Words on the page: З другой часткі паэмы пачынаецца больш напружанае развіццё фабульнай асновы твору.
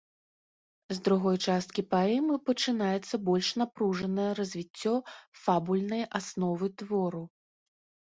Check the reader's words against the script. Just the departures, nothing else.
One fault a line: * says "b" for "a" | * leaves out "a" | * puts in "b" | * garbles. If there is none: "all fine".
all fine